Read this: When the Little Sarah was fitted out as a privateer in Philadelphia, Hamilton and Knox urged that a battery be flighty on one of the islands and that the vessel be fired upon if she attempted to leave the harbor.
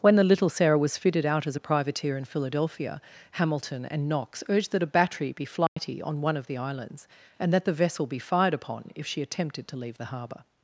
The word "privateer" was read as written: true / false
true